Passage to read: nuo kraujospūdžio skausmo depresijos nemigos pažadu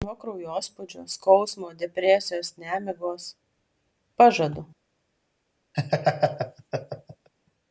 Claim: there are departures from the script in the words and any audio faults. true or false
true